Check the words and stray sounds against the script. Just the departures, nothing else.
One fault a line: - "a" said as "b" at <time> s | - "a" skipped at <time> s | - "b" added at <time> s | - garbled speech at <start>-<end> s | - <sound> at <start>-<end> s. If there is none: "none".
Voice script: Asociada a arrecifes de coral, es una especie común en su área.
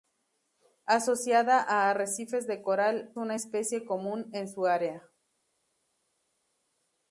- "es" skipped at 3.1 s